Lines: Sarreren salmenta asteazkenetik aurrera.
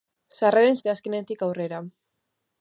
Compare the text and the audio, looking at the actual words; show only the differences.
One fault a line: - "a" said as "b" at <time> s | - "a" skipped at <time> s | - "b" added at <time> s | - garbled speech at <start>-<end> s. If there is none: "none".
- "salmenta" skipped at 0.8 s